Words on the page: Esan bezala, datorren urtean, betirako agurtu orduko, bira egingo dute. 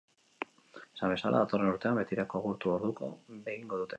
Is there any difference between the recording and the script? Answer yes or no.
yes